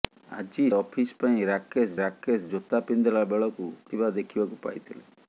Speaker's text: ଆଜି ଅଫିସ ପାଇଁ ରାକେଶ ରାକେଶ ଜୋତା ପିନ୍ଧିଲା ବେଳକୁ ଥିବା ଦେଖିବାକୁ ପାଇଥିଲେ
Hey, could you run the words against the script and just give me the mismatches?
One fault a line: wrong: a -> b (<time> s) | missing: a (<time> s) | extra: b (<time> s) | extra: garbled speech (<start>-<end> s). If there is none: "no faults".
no faults